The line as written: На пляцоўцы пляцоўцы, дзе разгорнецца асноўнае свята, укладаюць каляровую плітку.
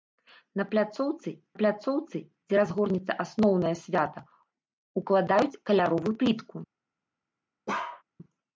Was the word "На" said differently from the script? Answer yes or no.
no